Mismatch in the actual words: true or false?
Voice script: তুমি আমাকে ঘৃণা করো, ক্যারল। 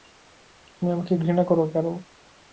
false